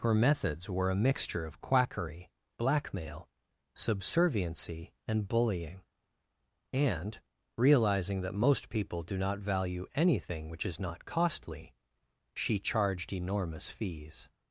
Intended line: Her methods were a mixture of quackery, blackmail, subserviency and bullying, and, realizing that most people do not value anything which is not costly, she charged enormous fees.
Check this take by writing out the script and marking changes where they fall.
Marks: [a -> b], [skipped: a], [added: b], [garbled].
Her methods were a mixture of quackery, blackmail, subserviency and bullying, and, realizing that most people do not value anything which is not costly, she charged enormous fees.